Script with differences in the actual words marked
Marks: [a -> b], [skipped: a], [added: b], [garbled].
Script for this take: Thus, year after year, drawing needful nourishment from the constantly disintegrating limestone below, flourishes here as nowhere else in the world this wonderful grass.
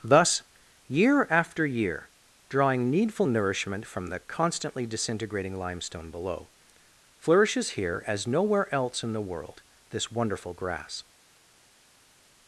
Thus, year after year, drawing needful nourishment from the constantly disintegrating limestone below, flourishes here as nowhere else in the world this wonderful grass.